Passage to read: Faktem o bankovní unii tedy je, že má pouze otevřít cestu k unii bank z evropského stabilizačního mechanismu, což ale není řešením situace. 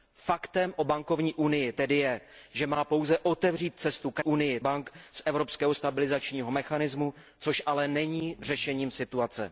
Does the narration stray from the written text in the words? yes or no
no